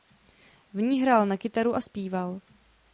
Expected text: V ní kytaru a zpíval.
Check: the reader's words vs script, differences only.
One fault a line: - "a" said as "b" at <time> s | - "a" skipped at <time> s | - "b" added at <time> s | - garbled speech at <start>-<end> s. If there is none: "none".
- "hrál na" added at 1.0 s